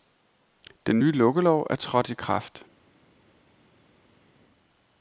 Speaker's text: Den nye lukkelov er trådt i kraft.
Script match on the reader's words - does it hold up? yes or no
yes